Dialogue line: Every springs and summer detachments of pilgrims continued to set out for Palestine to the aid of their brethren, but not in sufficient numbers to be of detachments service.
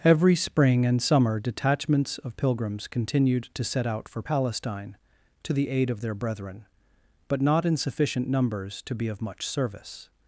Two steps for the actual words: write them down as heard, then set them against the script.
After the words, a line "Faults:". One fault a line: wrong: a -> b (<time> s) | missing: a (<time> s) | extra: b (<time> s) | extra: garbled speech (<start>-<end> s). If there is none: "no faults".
Every spring and summer detachments of pilgrims continued to set out for Palestine to the aid of their brethren, but not in sufficient numbers to be of much service.
Faults:
wrong: springs -> spring (0.3 s)
wrong: detachments -> much (9.2 s)